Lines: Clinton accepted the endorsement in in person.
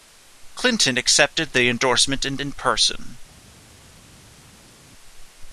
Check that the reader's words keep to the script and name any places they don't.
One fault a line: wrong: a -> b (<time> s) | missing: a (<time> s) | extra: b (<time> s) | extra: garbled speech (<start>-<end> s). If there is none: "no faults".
no faults